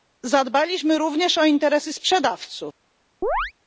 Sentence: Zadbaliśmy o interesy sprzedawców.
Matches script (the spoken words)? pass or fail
fail